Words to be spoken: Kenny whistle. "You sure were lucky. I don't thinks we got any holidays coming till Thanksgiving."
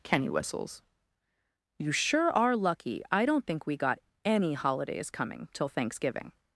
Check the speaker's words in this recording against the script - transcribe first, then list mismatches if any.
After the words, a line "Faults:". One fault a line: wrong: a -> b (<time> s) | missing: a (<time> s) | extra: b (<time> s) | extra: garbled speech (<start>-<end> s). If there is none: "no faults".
Kenny whistles. "You sure are lucky. I don't think we got any holidays coming till Thanksgiving."
Faults:
wrong: whistle -> whistles (0.3 s)
wrong: were -> are (2.3 s)
wrong: thinks -> think (3.5 s)